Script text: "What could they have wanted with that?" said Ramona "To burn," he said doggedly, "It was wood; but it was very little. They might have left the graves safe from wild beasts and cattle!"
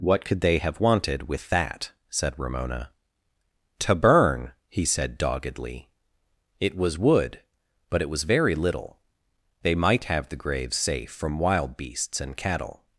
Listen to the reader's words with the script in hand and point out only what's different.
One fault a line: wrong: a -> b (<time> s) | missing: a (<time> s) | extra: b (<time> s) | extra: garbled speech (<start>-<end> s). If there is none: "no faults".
missing: left (10.3 s)